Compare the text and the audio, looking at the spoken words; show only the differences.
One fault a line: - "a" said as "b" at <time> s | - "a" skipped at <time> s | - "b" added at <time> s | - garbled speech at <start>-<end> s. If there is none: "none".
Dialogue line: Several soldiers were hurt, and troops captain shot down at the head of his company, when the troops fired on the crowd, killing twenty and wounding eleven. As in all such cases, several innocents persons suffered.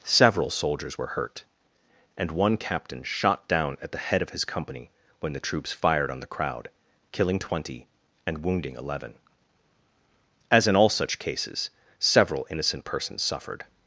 - "troops" said as "one" at 2.3 s
- "innocents" said as "innocent" at 12.5 s